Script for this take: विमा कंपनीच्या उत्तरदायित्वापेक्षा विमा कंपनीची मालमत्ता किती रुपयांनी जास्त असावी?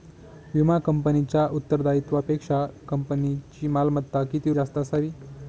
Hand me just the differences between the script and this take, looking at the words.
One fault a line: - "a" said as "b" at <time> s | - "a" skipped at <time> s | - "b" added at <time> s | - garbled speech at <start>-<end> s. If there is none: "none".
- "विमा" skipped at 2.6 s
- "रुपयांनी" skipped at 4.5 s